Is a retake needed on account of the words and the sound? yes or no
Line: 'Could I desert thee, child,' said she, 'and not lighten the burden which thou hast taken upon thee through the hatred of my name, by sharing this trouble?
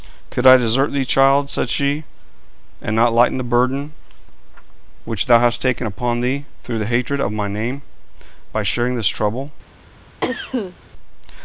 yes